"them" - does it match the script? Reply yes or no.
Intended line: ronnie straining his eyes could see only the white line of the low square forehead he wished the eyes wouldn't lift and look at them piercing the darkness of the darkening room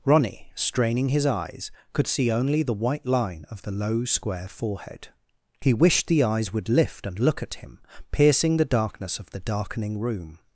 no